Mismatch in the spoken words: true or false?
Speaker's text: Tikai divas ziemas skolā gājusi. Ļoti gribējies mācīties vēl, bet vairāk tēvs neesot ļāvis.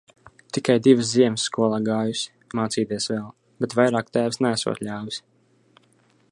true